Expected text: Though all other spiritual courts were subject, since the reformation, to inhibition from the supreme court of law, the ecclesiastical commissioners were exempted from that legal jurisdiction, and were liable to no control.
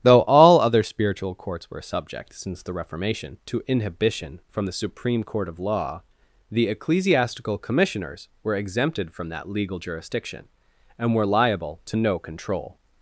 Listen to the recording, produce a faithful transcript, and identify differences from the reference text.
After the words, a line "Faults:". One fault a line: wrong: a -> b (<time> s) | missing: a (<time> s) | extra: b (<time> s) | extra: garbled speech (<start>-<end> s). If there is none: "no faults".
Though all other spiritual courts were subject, since the reformation, to inhibition from the supreme court of law, the ecclesiastical commissioners were exempted from that legal jurisdiction, and were liable to no control.
Faults:
no faults